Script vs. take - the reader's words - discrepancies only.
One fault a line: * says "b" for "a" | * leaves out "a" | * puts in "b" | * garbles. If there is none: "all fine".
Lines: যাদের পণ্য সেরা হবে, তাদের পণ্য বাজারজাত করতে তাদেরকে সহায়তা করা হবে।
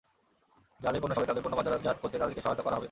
* leaves out "সেরা"